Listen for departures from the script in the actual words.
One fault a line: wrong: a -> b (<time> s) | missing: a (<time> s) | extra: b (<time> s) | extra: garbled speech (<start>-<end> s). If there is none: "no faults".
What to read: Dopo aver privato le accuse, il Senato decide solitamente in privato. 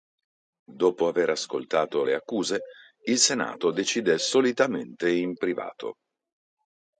wrong: privato -> ascoltato (1.3 s)